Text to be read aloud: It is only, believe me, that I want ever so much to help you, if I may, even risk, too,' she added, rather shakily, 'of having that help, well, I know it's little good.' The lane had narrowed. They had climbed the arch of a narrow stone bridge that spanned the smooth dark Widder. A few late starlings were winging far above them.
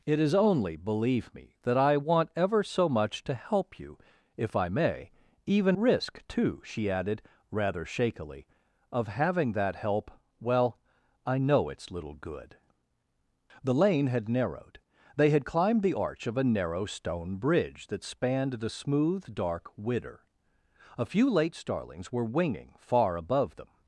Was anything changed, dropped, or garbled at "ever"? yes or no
no